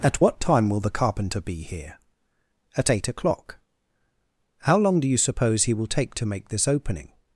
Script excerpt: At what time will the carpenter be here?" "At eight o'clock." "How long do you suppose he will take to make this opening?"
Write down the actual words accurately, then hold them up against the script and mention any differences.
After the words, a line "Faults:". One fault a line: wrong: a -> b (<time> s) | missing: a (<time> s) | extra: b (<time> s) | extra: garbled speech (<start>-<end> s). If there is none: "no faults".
At what time will the carpenter be here?" "At eight o'clock." "How long do you suppose he will take to make this opening?"
Faults:
no faults